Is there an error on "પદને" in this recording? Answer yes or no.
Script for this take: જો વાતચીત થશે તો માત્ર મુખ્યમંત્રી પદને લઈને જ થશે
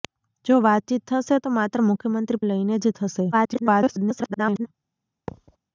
yes